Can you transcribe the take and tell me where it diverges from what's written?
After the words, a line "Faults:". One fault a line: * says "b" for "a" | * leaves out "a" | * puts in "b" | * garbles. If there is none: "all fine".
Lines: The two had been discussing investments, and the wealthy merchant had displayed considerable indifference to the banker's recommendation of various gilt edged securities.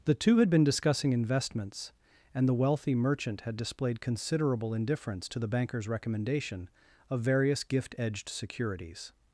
The two had been discussing investments, and the wealthy merchant had displayed considerable indifference to the banker's recommendation of various gift edged securities.
Faults:
* says "gift" for "gilt"